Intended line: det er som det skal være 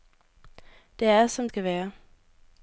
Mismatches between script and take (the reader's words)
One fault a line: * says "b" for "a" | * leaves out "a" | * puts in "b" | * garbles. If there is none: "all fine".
* leaves out "det"